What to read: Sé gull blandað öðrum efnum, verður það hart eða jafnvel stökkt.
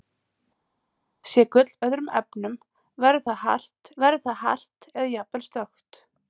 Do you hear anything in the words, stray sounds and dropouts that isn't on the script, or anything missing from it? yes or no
yes